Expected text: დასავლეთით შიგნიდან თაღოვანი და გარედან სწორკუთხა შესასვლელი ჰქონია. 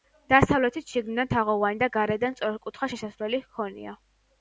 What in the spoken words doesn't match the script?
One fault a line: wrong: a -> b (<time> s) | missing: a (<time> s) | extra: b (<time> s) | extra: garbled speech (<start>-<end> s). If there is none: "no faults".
no faults